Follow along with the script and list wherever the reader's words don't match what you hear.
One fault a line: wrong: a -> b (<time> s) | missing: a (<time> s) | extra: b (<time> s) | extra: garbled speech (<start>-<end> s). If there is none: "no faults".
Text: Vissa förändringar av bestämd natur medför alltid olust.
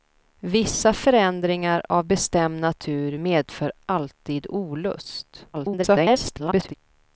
extra: garbled speech (5.5-6.7 s)